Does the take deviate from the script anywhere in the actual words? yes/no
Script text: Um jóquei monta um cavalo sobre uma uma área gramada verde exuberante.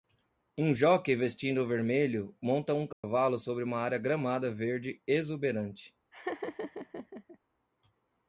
yes